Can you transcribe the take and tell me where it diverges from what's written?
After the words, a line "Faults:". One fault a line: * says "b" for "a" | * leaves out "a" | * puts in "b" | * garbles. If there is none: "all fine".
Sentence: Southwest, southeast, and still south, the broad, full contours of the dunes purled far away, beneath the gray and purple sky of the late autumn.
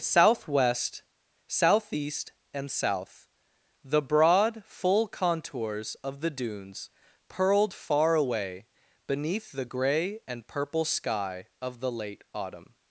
Southwest, southeast, and south, the broad, full contours of the dunes purled far away, beneath the gray and purple sky of the late autumn.
Faults:
* leaves out "still"